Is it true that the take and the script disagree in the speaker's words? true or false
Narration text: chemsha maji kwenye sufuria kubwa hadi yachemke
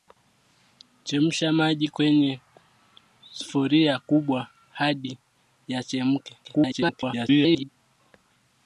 true